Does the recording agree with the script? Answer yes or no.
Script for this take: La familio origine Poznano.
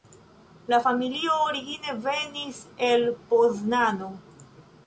no